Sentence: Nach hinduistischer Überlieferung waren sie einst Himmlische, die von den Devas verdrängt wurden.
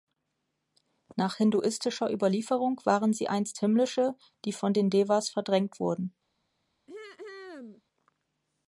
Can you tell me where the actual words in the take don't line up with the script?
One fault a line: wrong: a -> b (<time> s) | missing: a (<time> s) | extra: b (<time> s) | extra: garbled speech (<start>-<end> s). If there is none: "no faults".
no faults